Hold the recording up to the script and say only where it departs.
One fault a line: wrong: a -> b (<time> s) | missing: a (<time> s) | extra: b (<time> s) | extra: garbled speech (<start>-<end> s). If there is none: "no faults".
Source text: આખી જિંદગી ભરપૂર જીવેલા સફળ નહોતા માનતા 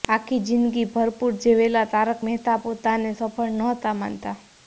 extra: તારક મહેતા પોતાને (1.9 s)